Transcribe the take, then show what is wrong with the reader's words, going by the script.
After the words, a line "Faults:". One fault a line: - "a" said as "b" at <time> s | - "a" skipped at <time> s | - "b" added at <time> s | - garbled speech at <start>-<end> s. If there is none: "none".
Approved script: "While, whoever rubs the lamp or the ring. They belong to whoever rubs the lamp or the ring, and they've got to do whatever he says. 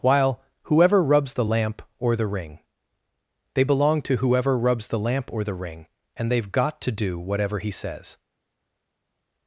"While, whoever rubs the lamp or the ring. They belong to whoever rubs the lamp or the ring, and they've got to do whatever he says.
Faults:
none